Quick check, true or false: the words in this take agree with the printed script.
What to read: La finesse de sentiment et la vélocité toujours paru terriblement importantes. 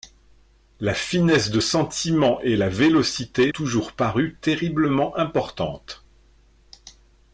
true